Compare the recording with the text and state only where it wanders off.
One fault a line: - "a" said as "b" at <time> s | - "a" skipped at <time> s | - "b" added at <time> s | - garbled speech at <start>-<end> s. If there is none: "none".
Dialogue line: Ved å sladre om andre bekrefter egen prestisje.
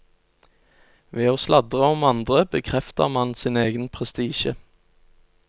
- "man sin" added at 3.2 s